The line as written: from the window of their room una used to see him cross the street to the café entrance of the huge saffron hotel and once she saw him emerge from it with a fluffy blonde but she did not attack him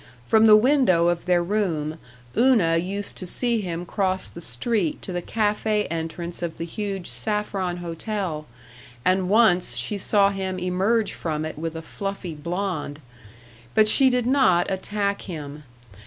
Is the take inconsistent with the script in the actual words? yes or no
no